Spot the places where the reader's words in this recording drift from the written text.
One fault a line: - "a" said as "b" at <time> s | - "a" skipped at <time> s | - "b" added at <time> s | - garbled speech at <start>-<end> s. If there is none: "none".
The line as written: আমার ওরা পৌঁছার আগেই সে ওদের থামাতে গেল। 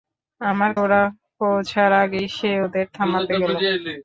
none